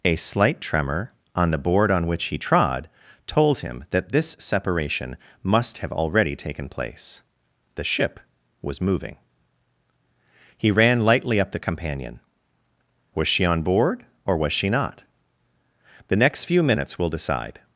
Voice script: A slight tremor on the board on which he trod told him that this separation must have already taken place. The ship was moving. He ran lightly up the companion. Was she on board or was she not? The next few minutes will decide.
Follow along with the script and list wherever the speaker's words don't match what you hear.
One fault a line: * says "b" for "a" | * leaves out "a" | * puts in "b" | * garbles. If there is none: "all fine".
all fine